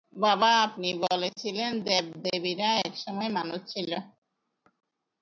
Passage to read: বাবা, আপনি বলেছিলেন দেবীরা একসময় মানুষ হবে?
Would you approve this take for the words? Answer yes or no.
no